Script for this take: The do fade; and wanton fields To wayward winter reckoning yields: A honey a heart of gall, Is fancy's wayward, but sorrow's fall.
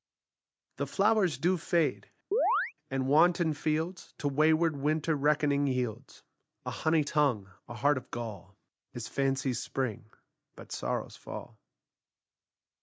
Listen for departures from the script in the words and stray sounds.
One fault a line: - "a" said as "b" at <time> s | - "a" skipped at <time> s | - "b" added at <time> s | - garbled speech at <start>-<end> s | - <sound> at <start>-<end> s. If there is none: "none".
- "flowers" added at 0.9 s
- chirp at 2.3-2.7 s
- "tongue" added at 7.0 s
- "wayward" said as "spring" at 9.6 s